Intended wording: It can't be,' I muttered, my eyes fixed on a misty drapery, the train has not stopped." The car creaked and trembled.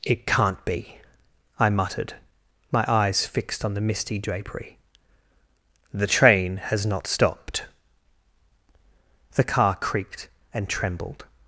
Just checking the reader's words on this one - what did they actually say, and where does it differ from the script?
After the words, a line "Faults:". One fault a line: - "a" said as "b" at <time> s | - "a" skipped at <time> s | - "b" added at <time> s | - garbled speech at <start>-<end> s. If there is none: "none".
It can't be,' I muttered, my eyes fixed on the misty drapery, the train has not stopped." The car creaked and trembled.
Faults:
- "a" said as "the" at 3.8 s